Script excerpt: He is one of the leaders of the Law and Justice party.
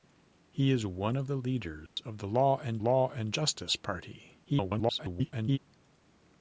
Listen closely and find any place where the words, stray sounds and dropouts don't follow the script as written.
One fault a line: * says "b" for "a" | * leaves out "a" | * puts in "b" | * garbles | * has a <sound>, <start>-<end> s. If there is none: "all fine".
* has a dropout, 1.9-2.0 s
* puts in "Law and"
* garbles